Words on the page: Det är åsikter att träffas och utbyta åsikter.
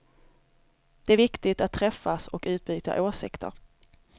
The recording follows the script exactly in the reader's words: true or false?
false